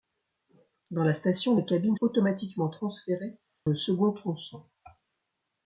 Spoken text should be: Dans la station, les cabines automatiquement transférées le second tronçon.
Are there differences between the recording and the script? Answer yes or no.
no